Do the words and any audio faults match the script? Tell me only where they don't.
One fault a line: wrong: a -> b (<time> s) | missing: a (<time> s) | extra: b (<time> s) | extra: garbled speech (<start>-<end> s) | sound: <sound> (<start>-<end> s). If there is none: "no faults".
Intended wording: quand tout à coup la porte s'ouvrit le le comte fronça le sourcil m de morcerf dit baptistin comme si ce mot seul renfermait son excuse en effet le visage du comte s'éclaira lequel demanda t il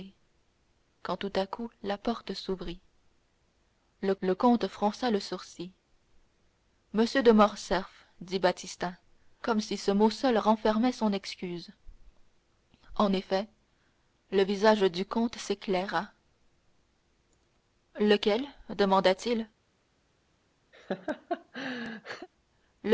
sound: laugh (20.7-22.3 s)